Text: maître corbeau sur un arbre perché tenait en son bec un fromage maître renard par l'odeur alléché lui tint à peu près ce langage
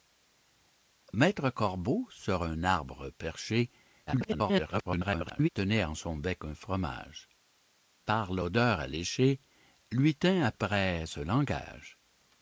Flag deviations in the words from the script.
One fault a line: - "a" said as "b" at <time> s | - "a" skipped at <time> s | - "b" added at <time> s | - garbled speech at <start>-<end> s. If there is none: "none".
- garbled speech at 4.1-5.5 s
- "maître renard" skipped at 7.3 s
- "peu" skipped at 10.5 s